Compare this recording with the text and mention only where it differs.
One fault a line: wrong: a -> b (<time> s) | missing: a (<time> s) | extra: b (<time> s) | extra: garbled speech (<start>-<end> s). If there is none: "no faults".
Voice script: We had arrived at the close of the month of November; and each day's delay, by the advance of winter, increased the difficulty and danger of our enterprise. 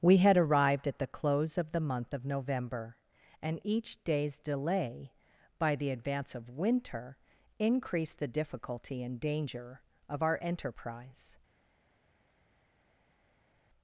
no faults